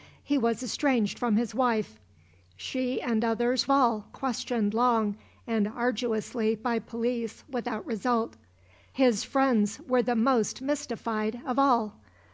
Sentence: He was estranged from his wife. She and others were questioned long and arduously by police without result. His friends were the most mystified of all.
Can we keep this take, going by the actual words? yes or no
no